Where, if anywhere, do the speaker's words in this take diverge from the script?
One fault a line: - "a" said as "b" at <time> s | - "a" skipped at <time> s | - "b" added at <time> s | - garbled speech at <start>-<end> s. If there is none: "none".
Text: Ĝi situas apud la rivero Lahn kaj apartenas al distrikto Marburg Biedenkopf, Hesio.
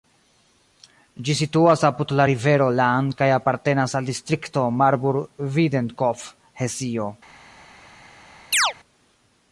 none